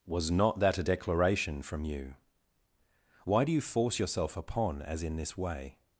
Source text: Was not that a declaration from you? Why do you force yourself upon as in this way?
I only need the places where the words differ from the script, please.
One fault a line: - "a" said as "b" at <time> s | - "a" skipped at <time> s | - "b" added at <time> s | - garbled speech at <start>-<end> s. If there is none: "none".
none